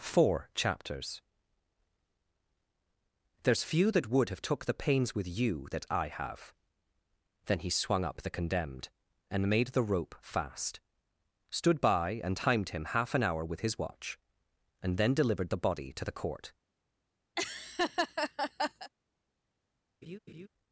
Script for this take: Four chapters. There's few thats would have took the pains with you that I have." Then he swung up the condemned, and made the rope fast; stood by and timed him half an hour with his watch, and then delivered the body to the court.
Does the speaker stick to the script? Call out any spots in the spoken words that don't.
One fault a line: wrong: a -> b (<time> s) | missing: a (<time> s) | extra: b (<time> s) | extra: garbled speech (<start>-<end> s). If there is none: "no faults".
wrong: thats -> that (3.9 s)